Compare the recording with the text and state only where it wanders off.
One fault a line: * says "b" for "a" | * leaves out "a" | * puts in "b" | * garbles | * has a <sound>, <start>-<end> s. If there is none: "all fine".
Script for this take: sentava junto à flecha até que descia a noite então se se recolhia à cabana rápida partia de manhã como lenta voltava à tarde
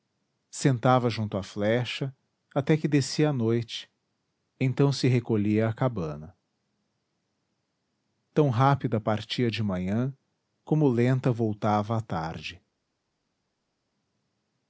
* leaves out "se"
* puts in "tão"